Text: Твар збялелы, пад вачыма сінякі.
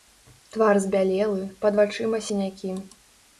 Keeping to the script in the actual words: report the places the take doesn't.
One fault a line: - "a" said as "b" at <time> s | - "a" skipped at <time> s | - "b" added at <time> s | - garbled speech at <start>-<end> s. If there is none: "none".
none